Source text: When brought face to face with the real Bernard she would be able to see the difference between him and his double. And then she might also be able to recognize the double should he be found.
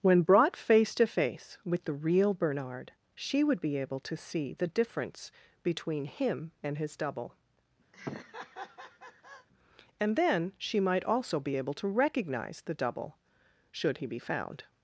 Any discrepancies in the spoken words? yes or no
no